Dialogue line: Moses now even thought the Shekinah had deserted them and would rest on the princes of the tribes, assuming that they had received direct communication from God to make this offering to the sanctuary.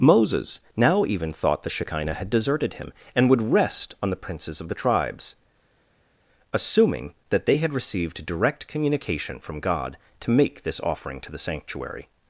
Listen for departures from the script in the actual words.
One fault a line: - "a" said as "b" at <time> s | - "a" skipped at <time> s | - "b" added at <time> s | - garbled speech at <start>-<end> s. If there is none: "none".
- "them" said as "him" at 2.7 s